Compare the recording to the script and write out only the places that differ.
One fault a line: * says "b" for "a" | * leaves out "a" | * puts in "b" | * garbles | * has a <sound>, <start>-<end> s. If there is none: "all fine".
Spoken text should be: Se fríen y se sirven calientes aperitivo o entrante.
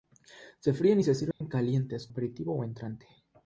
* has a dropout, 1.3-1.4 s